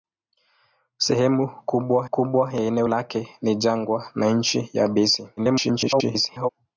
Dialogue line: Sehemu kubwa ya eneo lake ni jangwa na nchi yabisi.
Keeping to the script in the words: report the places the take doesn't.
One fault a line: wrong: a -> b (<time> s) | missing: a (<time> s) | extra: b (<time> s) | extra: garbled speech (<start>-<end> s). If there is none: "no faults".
extra: kubwa (2.1 s)
extra: garbled speech (5.4-6.5 s)